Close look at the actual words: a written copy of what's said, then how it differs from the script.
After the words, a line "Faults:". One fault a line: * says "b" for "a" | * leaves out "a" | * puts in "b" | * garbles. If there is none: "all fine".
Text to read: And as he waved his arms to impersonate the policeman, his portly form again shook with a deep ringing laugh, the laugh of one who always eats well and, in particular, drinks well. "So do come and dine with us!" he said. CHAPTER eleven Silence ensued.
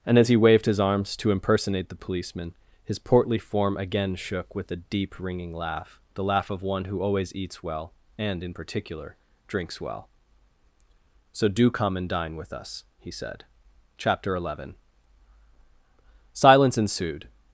And as he waved his arms to impersonate the policeman, his portly form again shook with a deep ringing laugh, the laugh of one who always eats well and, in particular, drinks well. "So do come and dine with us!" he said. CHAPTER eleven Silence ensued.
Faults:
all fine